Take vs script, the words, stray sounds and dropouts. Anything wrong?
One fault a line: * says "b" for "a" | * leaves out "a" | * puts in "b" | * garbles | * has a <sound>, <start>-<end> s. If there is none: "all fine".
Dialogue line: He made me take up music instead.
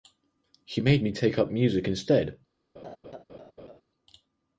* has a laugh, 2.8-3.8 s